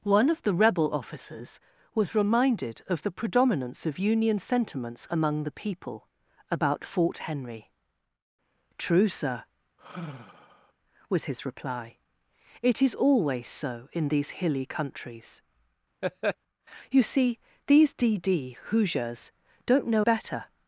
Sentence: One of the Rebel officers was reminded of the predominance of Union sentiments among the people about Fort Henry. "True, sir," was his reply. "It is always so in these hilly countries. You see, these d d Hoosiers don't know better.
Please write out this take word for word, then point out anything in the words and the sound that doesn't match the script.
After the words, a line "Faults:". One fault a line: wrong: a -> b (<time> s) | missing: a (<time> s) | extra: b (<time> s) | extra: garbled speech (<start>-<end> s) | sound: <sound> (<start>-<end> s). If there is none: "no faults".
One of the Rebel officers was reminded of the predominance of Union sentiments among the people about Fort Henry. "True, sir," was his reply. "It is always so in these hilly countries. You see, these d d Hoosiers don't know better.
Faults:
sound: sigh (9.8-10.7 s)
sound: laugh (16.0-16.4 s)